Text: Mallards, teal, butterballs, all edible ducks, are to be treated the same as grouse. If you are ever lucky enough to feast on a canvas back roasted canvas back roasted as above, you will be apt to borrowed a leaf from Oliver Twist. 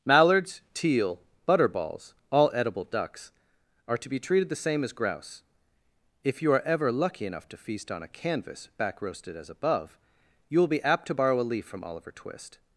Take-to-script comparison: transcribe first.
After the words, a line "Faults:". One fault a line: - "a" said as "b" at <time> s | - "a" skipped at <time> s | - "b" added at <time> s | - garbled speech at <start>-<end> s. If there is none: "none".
Mallards, teal, butterballs, all edible ducks, are to be treated the same as grouse. If you are ever lucky enough to feast on a canvas back roasted as above, you will be apt to borrow a leaf from Oliver Twist.
Faults:
- "canvas back roasted" skipped at 9.4 s
- "borrowed" said as "borrow" at 11.1 s